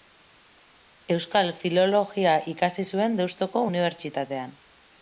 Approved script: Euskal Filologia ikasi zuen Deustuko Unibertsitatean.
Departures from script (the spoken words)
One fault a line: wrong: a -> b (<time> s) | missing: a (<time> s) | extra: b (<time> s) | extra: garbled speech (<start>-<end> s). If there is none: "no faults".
no faults